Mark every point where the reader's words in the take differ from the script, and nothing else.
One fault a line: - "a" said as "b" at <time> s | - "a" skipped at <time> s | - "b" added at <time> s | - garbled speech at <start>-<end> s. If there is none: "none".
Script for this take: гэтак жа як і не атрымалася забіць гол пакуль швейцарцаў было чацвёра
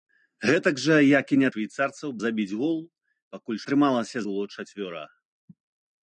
- "атрымалася" said as "швейцарцаў" at 1.5 s
- "швейцарцаў" said as "атрымалася" at 3.6 s